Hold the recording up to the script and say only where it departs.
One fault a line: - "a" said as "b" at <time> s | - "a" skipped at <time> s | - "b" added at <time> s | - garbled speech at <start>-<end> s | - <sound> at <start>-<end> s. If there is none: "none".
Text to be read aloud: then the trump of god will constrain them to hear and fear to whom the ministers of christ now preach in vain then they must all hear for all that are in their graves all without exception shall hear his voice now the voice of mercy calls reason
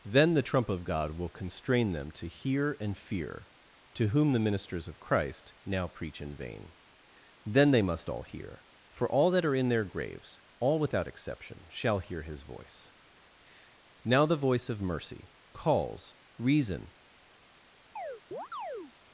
- chirp at 18.0-18.9 s